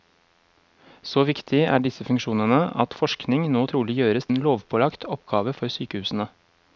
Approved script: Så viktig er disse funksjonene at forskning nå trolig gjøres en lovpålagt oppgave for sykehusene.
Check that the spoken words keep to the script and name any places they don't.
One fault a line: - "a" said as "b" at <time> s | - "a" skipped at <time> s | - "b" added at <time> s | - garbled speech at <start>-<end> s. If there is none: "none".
none